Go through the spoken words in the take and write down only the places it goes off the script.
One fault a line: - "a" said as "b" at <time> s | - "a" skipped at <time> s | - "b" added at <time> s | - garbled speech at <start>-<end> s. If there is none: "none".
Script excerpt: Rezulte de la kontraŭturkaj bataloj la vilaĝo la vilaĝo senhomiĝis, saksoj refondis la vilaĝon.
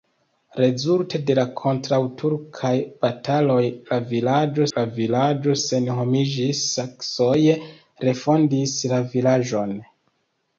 none